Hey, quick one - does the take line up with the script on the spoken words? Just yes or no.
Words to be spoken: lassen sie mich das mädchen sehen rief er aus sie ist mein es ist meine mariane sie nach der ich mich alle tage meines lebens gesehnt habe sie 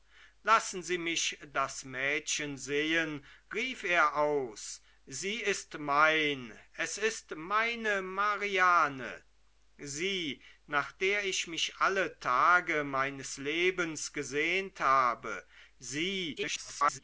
no